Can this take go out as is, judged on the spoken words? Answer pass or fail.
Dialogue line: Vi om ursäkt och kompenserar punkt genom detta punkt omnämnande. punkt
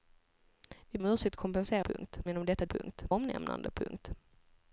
pass